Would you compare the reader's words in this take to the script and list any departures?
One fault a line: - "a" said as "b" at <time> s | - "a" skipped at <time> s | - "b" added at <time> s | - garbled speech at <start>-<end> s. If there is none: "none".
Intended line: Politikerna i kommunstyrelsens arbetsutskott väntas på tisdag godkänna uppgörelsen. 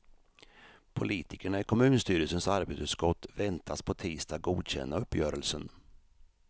none